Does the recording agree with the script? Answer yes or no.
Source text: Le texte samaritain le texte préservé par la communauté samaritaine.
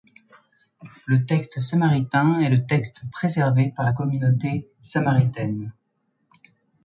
no